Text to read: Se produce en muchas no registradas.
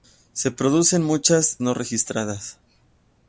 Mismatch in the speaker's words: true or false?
false